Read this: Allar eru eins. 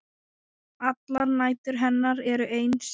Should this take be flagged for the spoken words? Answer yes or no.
yes